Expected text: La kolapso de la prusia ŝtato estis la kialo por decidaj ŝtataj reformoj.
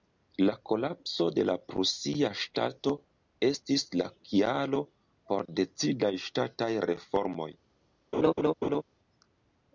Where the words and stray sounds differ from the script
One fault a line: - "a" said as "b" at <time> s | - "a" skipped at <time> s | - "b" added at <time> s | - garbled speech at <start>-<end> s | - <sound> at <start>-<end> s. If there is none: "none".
- laugh at 8.1-8.8 s